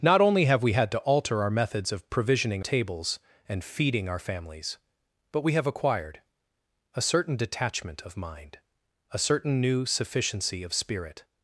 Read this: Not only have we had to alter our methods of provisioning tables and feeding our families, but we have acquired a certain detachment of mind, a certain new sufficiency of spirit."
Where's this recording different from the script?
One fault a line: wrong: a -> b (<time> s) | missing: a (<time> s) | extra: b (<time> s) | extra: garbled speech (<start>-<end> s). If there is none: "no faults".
no faults